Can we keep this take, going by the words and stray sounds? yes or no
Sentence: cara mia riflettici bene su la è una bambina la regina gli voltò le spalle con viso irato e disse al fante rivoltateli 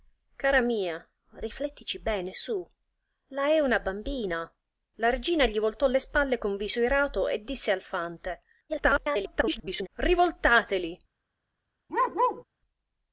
no